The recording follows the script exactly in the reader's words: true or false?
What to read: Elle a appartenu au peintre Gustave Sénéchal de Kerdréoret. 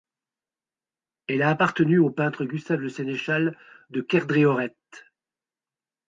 false